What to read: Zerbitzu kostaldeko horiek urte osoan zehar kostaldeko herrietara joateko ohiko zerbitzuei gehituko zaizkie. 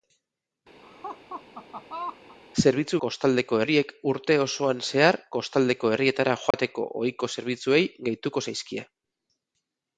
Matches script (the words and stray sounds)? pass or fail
fail